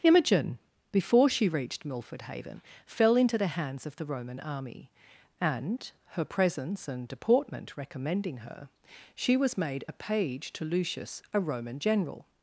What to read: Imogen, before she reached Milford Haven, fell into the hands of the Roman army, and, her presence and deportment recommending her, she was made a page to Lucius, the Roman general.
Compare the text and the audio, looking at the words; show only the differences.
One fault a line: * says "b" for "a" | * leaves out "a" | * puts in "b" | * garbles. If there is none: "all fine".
* says "a" for "the"